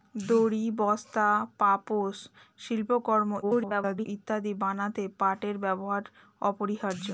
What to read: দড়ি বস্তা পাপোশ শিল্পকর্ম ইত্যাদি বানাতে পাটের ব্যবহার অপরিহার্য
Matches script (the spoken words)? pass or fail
fail